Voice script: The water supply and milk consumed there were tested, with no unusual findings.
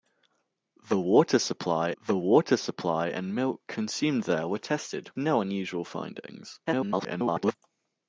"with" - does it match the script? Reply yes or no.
no